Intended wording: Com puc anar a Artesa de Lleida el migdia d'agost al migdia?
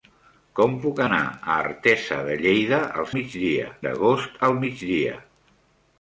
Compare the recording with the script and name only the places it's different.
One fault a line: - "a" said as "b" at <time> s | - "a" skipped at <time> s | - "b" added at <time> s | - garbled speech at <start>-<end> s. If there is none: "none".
none